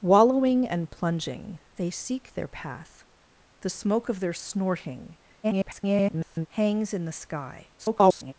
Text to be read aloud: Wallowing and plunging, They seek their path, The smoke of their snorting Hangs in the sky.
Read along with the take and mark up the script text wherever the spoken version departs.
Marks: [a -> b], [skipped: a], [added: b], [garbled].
Wallowing and plunging, They seek their path, The smoke of their snorting [garbled] Hangs in the sky. [garbled]